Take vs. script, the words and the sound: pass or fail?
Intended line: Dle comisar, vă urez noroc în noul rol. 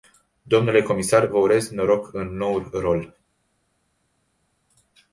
pass